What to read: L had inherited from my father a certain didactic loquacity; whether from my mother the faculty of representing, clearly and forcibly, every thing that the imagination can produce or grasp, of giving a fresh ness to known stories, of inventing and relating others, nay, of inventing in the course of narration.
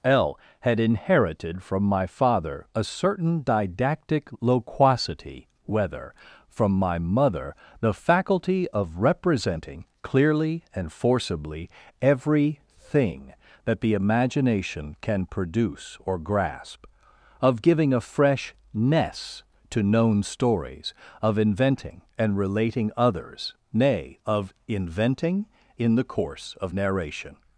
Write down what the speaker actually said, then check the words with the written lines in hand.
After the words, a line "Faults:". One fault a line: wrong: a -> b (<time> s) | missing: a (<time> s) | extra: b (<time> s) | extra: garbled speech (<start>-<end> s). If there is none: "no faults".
L had inherited from my father a certain didactic loquacity; whether from my mother the faculty of representing, clearly and forcibly, every thing that the imagination can produce or grasp, of giving a fresh ness to known stories, of inventing and relating others, nay, of inventing in the course of narration.
Faults:
no faults